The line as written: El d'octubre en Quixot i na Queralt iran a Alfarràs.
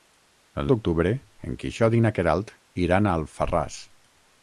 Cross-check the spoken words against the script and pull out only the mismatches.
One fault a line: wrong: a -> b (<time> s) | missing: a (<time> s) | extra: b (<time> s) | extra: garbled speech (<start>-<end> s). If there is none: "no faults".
no faults